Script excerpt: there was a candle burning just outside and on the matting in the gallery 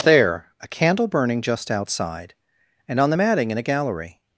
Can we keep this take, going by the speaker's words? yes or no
no